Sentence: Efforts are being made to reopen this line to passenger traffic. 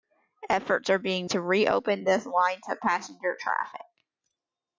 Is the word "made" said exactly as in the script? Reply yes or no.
no